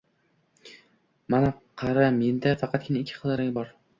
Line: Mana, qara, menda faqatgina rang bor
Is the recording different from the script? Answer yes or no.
yes